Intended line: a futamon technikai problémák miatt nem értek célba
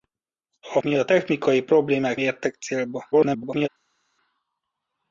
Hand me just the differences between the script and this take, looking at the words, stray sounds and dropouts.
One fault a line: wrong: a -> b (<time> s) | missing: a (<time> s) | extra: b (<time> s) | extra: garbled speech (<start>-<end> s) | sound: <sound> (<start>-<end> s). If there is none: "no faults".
wrong: futamon -> miatt (0.8 s)
missing: miatt nem (2.2 s)
extra: garbled speech (3.1-3.7 s)